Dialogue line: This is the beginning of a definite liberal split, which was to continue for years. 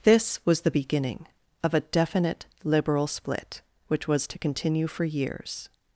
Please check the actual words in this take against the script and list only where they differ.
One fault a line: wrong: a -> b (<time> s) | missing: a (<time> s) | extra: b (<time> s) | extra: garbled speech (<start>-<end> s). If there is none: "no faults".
wrong: is -> was (0.5 s)